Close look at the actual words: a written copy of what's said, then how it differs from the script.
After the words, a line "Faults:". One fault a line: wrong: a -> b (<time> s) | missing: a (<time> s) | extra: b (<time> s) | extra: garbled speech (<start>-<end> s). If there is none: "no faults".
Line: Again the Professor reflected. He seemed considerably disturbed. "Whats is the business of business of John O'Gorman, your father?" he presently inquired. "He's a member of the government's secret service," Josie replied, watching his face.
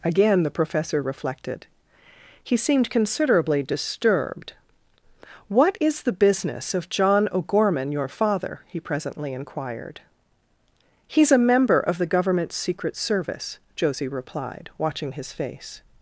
Again the Professor reflected. He seemed considerably disturbed. "What is the business of John O'Gorman, your father?" he presently inquired. "He's a member of the government's secret service," Josie replied, watching his face.
Faults:
wrong: Whats -> What (5.5 s)
missing: business of (6.9 s)